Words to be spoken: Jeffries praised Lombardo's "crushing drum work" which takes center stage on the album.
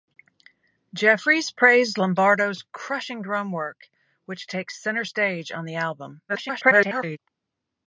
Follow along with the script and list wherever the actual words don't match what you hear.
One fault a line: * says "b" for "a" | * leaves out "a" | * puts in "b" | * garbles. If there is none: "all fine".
* garbles